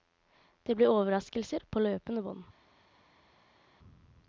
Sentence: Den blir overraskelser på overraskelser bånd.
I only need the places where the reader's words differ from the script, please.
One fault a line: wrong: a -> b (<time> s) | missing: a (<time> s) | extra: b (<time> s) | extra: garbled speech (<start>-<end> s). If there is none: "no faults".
wrong: Den -> Det (0.6 s)
wrong: overraskelser -> løpende (1.8 s)